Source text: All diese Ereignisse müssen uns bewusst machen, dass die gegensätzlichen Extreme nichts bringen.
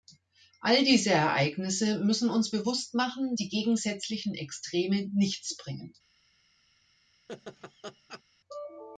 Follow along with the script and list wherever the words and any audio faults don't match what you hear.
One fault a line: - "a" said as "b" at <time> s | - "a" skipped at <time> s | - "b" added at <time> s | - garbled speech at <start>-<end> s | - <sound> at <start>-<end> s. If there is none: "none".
- "dass" skipped at 3.3 s
- laugh at 7.3-8.2 s